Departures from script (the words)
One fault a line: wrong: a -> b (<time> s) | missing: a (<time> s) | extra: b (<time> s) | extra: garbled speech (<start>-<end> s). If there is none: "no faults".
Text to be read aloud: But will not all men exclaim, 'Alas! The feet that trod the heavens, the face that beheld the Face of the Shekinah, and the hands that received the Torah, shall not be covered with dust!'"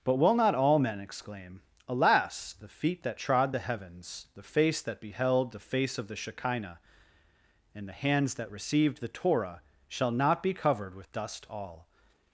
extra: all (11.5 s)